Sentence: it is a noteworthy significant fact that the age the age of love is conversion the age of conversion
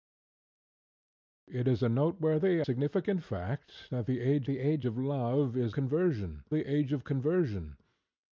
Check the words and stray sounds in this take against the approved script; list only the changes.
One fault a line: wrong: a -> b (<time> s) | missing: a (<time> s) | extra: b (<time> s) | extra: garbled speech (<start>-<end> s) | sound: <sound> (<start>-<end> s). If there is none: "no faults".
no faults